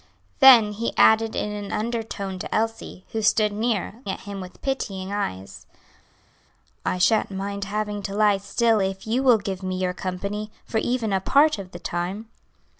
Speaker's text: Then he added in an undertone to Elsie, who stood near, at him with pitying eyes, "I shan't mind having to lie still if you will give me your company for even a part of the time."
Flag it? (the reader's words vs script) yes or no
no